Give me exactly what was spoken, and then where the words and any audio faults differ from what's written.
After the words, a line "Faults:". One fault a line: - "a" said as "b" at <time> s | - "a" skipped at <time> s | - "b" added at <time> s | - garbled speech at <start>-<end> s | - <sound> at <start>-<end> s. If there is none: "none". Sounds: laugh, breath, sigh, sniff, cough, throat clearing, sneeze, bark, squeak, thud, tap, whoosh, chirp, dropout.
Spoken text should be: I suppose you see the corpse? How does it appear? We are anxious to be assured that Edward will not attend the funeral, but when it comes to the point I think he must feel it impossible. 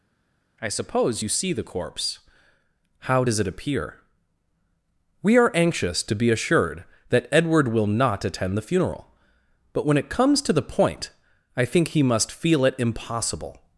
I suppose you see the corpse? How does it appear? We are anxious to be assured that Edward will not attend the funeral, but when it comes to the point I think he must feel it impossible.
Faults:
none